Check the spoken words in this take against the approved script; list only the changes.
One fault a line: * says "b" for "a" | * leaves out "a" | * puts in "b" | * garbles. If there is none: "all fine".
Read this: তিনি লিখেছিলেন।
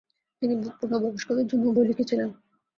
* puts in "পূর্ণবয়স্কদের জন্যও বই"